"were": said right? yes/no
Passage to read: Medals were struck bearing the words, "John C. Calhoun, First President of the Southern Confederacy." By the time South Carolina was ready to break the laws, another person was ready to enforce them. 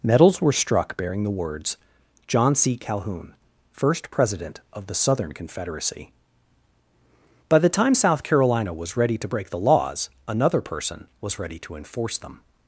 yes